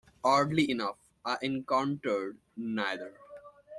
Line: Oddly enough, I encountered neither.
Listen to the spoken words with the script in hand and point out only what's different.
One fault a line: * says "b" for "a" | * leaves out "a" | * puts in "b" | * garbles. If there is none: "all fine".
all fine